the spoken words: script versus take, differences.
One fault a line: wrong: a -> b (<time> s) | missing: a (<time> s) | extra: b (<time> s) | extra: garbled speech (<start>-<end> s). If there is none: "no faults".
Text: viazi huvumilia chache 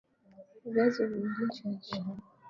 no faults